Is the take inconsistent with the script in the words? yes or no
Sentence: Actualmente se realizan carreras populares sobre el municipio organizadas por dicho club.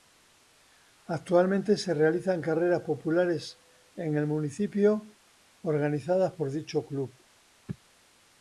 yes